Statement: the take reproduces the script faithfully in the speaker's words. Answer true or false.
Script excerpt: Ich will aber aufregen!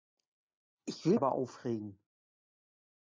true